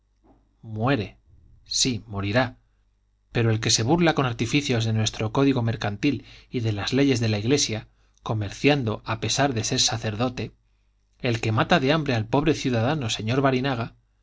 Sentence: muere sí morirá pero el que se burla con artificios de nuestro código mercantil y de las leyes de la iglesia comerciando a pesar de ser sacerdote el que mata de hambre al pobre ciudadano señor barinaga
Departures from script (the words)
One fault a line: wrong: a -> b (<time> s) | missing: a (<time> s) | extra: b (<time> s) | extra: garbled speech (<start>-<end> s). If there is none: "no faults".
no faults